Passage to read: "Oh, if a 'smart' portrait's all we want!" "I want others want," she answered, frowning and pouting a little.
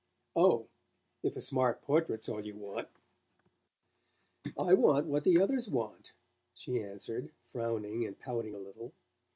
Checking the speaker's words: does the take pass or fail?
fail